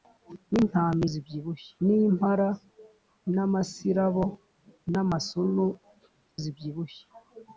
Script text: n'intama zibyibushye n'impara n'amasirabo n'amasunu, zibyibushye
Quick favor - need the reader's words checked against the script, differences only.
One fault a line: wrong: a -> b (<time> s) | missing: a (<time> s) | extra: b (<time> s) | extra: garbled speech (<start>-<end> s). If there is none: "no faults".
no faults